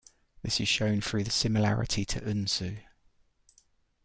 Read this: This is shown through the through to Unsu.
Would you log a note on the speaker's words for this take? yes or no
yes